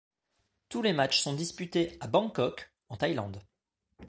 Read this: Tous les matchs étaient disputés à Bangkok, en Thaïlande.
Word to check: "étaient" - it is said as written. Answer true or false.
false